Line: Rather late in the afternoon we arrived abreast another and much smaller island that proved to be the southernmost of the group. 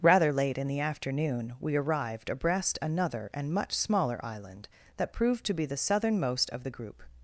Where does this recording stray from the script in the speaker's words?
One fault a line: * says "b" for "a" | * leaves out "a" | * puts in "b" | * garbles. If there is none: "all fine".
all fine